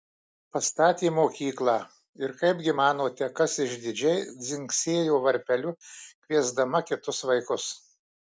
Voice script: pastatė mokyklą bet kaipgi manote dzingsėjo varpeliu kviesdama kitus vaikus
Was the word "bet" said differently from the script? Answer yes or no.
yes